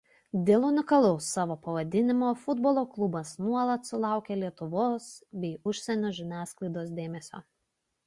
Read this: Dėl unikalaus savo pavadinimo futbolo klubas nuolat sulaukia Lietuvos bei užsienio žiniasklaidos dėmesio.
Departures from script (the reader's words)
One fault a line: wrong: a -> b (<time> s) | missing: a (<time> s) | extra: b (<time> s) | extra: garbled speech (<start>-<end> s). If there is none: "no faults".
no faults